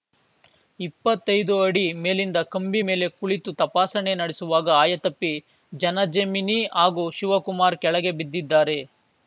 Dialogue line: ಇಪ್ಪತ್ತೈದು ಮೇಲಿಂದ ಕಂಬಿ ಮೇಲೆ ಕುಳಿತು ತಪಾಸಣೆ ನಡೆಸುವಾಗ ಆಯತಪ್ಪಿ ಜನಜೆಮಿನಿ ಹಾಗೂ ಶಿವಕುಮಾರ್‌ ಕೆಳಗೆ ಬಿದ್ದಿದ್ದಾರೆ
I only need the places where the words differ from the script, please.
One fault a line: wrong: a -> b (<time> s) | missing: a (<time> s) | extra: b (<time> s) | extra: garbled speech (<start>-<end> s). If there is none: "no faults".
extra: ಅಡಿ (1.6 s)